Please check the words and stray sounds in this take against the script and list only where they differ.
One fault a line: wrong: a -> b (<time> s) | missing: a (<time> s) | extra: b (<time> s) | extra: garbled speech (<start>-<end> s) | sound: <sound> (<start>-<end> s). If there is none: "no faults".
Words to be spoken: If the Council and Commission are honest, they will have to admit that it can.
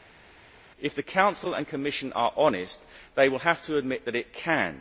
no faults